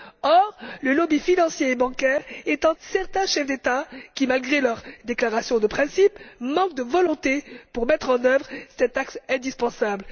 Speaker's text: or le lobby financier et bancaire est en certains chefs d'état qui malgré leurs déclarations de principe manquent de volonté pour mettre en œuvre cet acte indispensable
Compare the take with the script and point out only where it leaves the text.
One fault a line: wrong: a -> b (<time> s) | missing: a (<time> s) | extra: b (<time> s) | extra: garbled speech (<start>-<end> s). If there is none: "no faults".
no faults